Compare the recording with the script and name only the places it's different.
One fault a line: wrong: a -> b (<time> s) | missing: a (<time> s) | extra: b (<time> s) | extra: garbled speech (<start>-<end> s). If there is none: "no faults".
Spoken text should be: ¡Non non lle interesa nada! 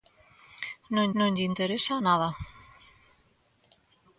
no faults